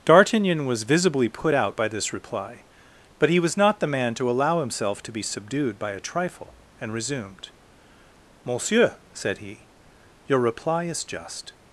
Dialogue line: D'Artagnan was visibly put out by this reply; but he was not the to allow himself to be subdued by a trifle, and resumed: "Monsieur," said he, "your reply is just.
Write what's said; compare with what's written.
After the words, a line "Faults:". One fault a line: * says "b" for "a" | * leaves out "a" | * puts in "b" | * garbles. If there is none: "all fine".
D'Artagnan was visibly put out by this reply; but he was not the man to allow himself to be subdued by a trifle, and resumed: "Monsieur," said he, "your reply is just.
Faults:
* puts in "man"